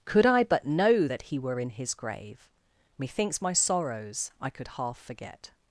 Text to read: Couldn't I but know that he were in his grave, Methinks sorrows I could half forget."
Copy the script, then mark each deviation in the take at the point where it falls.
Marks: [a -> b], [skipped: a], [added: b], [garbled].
[Couldn't -> Could] I but know that he were in his grave, Methinks [added: my] sorrows I could half forget."